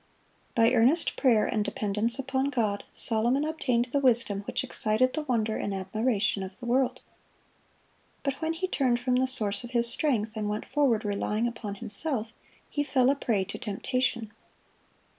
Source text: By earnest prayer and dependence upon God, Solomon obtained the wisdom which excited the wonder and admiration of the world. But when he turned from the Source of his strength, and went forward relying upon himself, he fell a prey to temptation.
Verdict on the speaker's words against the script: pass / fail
pass